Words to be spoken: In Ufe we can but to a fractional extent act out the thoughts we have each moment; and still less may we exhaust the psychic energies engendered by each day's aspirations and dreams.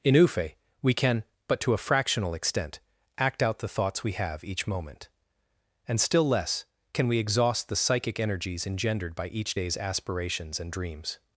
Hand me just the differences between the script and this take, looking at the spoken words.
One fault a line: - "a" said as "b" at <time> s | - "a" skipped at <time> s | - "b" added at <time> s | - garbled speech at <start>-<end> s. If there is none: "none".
- "may" said as "can" at 6.9 s